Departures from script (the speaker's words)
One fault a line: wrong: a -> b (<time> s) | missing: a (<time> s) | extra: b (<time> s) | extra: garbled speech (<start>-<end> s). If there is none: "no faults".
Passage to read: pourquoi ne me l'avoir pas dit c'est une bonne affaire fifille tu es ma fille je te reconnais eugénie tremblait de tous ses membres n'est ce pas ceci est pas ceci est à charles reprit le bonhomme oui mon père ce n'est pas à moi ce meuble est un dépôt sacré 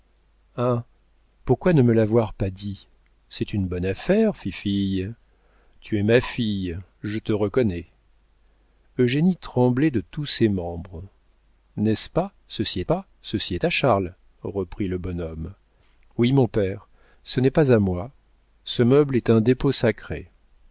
no faults